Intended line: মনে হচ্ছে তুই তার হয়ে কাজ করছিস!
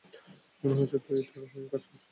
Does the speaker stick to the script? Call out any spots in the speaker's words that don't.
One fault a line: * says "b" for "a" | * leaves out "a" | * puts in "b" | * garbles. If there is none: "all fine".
all fine